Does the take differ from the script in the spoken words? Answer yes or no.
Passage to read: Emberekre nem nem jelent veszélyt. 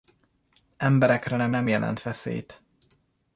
no